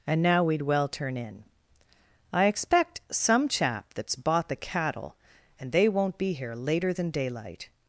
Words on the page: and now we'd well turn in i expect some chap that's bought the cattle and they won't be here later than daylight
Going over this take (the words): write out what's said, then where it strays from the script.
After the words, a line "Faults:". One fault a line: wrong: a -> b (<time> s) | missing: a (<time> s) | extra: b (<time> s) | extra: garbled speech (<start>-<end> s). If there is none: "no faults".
and now we'd well turn in i expect some chap that's bought the cattle and they won't be here later than daylight
Faults:
no faults